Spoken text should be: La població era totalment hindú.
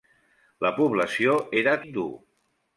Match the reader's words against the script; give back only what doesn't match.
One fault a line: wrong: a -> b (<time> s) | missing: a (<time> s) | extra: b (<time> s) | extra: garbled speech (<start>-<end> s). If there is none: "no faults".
missing: totalment (1.8 s)